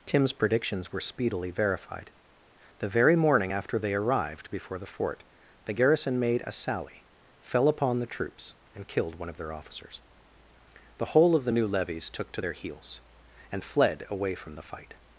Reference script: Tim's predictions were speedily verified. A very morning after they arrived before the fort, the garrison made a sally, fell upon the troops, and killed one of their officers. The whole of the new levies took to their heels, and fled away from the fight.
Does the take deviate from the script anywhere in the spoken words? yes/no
yes